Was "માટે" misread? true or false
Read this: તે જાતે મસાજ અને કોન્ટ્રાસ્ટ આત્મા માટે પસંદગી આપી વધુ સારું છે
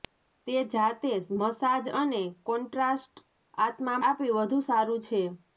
true